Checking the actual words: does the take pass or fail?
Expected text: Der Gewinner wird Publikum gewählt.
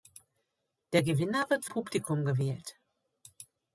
pass